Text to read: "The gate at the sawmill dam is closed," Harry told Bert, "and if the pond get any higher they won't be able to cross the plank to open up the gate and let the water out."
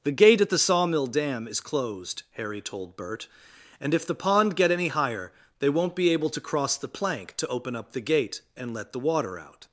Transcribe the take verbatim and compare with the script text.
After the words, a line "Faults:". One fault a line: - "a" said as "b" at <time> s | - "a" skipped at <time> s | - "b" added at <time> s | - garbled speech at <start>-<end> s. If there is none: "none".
"The gate at the sawmill dam is closed," Harry told Bert, "and if the pond get any higher they won't be able to cross the plank to open up the gate and let the water out."
Faults:
none